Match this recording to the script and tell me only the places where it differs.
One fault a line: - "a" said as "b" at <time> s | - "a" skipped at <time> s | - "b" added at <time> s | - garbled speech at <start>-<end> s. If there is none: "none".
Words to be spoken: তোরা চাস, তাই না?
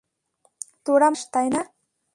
none